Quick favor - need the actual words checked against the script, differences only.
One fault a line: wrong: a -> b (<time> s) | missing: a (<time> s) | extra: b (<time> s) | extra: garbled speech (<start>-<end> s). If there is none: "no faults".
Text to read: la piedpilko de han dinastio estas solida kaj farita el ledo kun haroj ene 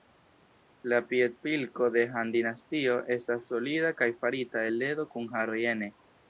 no faults